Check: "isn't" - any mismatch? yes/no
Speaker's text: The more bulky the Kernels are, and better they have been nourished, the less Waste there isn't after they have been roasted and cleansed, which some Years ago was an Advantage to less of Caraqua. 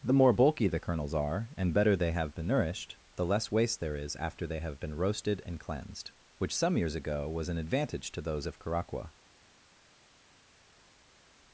yes